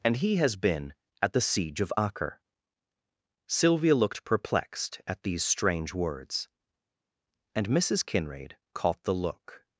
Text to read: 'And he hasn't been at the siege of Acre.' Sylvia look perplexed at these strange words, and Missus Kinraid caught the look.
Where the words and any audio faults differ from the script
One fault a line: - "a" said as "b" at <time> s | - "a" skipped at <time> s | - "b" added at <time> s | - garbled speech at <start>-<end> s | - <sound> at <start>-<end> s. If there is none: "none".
- "hasn't" said as "has" at 0.4 s
- "look" said as "looked" at 3.9 s